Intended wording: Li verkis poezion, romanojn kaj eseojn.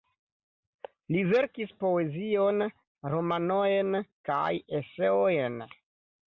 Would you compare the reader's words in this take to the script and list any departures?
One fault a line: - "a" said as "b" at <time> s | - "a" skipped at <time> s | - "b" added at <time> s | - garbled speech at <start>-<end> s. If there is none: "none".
none